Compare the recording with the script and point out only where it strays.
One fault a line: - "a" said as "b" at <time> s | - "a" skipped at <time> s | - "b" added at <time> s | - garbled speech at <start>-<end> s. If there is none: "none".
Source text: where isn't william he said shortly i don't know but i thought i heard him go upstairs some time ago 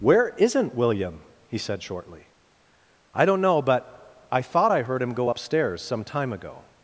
none